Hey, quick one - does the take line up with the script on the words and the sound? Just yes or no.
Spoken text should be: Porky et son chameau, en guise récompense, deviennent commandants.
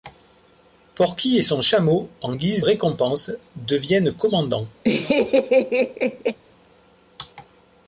no